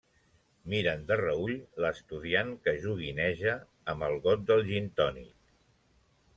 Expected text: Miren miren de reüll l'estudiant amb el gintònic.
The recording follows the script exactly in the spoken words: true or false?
false